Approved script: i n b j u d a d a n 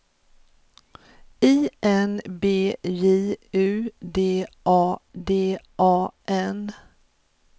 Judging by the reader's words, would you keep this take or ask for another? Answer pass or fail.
pass